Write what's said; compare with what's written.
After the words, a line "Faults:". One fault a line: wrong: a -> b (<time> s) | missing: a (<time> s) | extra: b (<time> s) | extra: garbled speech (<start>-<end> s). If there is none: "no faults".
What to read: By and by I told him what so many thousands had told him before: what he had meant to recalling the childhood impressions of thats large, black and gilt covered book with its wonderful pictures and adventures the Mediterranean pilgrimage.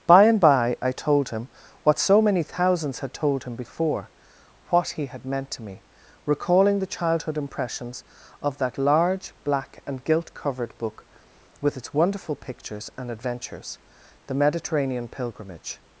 By and by I told him what so many thousands had told him before: what he had meant to me, recalling the childhood impressions of that large, black and gilt covered book with its wonderful pictures and adventures the Mediterranean pilgrimage.
Faults:
extra: me (5.6 s)
wrong: thats -> that (8.6 s)